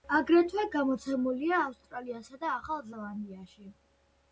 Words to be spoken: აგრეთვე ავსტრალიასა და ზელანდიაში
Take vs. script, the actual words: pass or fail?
fail